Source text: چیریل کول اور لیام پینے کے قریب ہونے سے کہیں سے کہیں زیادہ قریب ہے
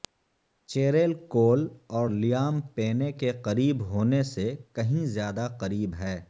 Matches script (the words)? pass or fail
fail